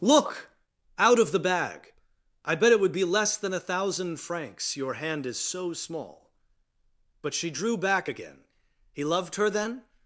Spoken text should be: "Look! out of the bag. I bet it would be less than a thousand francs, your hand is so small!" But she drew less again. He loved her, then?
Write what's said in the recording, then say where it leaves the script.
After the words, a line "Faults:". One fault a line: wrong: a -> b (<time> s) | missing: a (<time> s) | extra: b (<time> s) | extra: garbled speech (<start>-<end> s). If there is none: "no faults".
"Look! out of the bag. I bet it would be less than a thousand francs, your hand is so small!" But she drew back again. He loved her, then?
Faults:
wrong: less -> back (7.8 s)